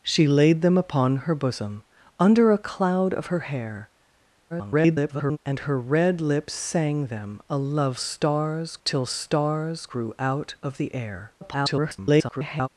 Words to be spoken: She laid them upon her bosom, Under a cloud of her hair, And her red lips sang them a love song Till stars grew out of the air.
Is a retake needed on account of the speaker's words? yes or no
yes